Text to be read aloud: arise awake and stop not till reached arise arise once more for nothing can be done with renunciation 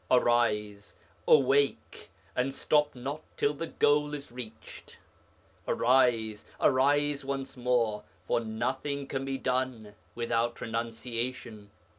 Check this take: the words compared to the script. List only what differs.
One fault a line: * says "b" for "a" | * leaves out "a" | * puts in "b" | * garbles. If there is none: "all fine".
* puts in "the goal is"
* says "without" for "with"